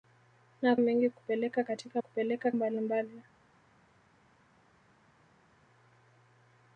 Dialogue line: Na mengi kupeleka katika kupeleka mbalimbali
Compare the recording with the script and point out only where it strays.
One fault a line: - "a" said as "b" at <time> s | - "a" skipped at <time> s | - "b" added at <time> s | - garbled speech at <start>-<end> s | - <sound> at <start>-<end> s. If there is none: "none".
none